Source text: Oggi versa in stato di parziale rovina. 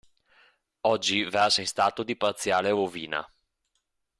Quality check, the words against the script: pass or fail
pass